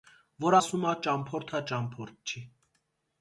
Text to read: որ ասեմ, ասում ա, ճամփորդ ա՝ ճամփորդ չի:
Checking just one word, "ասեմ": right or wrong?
wrong